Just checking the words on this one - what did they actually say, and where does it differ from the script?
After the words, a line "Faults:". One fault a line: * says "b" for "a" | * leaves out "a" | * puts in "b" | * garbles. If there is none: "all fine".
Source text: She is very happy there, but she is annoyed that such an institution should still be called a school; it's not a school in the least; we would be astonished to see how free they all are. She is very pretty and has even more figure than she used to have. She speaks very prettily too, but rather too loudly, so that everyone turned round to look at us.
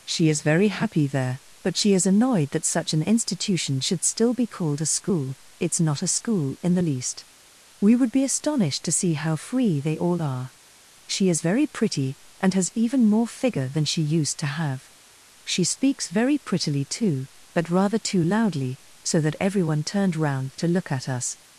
She is very happy there, but she is annoyed that such an institution should still be called a school; it's not a school in the least; we would be astonished to see how free they all are. She is very pretty and has even more figure than she used to have. She speaks very prettily too, but rather too loudly, so that everyone turned round to look at us.
Faults:
all fine